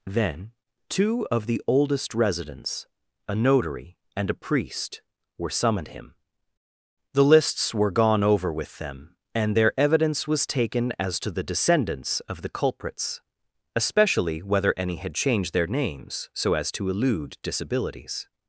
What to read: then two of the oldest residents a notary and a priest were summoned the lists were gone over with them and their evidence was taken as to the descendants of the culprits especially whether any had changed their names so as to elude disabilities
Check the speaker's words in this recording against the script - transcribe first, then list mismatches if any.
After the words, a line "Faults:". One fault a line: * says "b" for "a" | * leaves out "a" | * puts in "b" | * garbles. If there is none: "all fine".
then two of the oldest residents a notary and a priest were summoned him the lists were gone over with them and their evidence was taken as to the descendants of the culprits especially whether any had changed their names so as to elude disabilities
Faults:
* puts in "him"